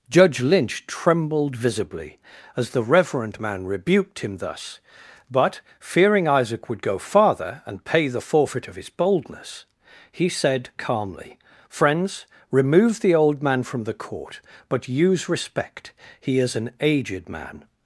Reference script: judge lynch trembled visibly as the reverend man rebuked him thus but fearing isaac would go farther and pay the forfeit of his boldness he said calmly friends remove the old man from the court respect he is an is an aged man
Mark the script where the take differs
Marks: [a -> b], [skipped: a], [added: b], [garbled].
judge lynch trembled visibly as the reverend man rebuked him thus but fearing isaac would go farther and pay the forfeit of his boldness he said calmly friends remove the old man from the court [added: but use] respect he is an [skipped: is an] aged man